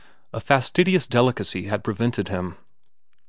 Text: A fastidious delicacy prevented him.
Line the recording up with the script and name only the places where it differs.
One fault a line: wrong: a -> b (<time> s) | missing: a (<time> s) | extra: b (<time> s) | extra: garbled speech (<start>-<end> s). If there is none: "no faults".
extra: had (1.7 s)